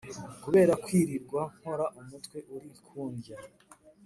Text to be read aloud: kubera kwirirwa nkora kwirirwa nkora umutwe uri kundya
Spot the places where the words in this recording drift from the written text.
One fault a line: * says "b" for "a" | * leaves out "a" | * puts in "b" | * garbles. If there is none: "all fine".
* leaves out "kwirirwa nkora"